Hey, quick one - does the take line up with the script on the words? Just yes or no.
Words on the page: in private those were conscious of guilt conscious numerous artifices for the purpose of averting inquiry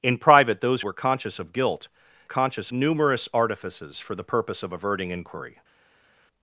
yes